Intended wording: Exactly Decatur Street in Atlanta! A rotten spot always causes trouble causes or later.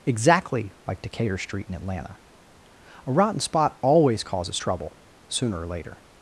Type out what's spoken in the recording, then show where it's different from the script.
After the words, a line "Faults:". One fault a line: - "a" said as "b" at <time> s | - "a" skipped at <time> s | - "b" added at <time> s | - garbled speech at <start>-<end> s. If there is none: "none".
Exactly like Decatur Street in Atlanta! A rotten spot always causes trouble sooner or later.
Faults:
- "like" added at 0.9 s
- "causes" said as "sooner" at 5.3 s